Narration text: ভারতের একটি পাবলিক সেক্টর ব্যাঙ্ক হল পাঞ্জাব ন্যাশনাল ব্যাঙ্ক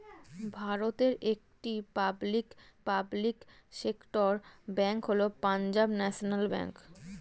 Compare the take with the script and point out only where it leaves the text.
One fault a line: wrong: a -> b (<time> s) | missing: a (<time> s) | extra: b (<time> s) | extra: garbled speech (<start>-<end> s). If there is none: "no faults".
extra: পাবলিক (2.9 s)